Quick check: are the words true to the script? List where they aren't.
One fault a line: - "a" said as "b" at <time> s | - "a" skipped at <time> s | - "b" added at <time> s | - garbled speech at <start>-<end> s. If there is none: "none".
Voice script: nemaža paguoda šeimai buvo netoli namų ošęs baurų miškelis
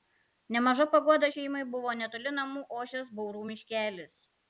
none